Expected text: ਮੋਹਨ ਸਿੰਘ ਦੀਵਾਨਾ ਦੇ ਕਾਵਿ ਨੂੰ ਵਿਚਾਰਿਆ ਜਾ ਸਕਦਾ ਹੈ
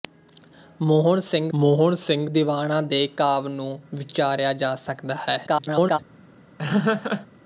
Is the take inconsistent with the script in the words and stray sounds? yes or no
yes